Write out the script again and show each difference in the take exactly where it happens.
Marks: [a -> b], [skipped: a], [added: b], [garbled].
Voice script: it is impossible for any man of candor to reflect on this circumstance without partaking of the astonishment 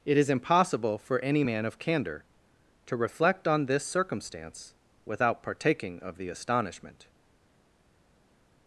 it is impossible for any man of candor to reflect on this circumstance without partaking of the astonishment